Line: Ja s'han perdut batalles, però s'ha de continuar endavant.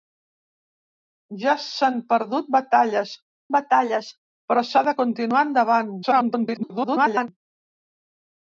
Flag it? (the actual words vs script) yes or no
yes